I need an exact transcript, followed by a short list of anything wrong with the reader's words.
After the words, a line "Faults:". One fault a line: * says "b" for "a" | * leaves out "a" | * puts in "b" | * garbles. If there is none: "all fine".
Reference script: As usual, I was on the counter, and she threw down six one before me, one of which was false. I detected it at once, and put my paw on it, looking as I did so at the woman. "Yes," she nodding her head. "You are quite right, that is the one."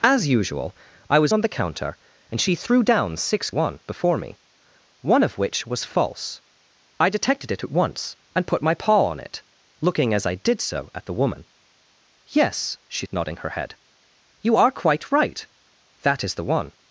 As usual, I was on the counter, and she threw down six one before me, one of which was false. I detected it at once, and put my paw on it, looking as I did so at the woman. "Yes," she nodding her head. "You are quite right, that is the one."
Faults:
all fine